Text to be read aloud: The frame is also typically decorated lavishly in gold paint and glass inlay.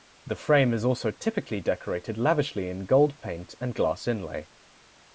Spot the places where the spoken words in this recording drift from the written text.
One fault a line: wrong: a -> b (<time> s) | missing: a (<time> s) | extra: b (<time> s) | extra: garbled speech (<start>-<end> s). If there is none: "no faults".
no faults